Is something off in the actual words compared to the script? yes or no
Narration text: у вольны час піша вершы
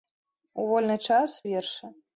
yes